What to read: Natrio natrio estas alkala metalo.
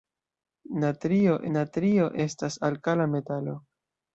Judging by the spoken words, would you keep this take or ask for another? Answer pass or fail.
pass